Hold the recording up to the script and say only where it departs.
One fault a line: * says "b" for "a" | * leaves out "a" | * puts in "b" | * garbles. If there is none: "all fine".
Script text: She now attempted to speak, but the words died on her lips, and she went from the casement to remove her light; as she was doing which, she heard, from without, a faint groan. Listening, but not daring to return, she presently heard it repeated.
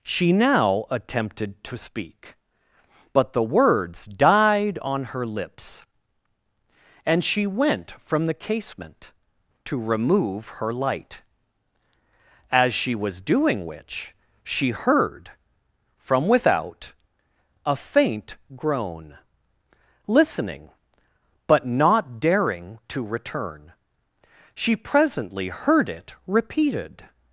all fine